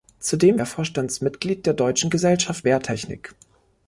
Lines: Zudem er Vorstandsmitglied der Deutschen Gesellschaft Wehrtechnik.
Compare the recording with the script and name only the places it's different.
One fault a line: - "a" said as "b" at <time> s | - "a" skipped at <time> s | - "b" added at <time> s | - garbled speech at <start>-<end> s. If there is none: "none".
none